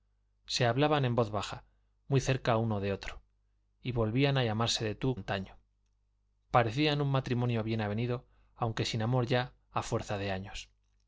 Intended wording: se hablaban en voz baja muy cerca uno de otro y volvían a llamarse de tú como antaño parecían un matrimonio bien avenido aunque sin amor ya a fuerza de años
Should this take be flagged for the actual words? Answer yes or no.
yes